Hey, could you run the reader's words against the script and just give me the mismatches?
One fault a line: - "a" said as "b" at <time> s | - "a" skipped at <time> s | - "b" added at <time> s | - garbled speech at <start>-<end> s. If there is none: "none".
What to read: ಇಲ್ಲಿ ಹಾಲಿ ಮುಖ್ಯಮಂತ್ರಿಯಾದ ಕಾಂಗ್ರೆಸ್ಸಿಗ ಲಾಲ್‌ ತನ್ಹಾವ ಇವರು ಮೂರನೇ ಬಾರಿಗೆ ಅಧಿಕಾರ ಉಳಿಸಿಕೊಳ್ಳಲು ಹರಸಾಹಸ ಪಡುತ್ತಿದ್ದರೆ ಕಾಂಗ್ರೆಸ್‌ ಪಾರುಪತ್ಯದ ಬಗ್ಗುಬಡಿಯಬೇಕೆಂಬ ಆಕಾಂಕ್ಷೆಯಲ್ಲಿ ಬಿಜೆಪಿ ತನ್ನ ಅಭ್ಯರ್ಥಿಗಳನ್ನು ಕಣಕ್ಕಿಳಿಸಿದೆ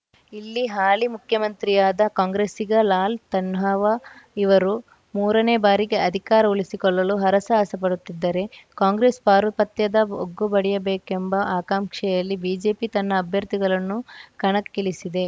none